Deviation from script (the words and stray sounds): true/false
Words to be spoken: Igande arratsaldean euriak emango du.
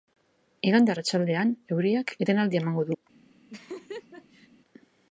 true